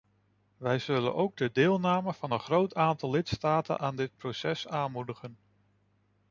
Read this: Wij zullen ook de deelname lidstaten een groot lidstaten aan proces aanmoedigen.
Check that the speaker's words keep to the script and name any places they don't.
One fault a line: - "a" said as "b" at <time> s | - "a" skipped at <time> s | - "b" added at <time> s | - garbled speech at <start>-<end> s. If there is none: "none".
- "lidstaten" said as "van" at 2.1 s
- "aantal" added at 2.8 s
- "dit" added at 4.0 s